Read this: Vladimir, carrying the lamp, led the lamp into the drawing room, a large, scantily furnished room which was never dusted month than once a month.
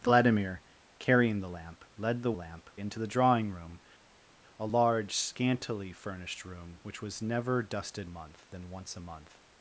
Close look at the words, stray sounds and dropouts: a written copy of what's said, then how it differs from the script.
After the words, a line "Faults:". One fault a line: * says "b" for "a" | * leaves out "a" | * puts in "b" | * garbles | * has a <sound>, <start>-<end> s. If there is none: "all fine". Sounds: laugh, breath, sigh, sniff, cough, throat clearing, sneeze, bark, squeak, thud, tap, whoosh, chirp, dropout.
Vladimir, carrying the lamp, led the lamp into the drawing room, a large, scantily furnished room which was never dusted month than once a month.
Faults:
all fine